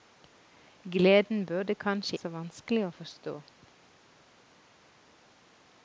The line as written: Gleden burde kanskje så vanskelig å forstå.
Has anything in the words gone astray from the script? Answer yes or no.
no